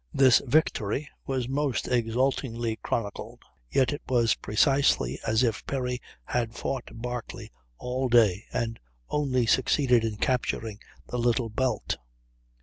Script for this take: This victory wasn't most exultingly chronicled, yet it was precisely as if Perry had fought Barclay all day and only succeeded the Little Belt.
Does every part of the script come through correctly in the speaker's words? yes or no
no